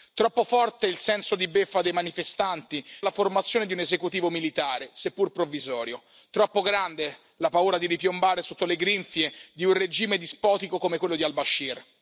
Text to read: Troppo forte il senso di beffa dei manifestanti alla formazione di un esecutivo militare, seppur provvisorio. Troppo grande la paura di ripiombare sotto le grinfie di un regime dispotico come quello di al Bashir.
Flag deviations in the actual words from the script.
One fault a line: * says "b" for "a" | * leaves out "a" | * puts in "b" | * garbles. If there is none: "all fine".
all fine